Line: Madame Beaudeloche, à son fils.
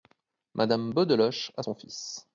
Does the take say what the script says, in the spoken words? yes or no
yes